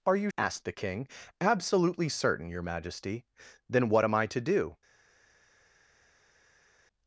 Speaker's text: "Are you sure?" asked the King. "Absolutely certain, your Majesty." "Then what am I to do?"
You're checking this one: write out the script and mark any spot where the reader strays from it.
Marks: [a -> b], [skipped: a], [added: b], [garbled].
"Are you [skipped: sure?"] asked the King. "Absolutely certain, your Majesty." "Then what am I to do?"